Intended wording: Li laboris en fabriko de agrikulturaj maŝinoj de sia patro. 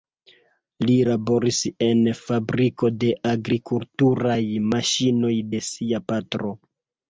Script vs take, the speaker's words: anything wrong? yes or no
no